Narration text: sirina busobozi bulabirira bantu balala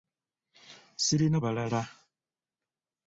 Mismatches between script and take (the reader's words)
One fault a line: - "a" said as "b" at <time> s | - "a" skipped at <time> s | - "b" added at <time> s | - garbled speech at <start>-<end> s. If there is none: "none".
- "busobozi bulabirira bantu" skipped at 1.4 s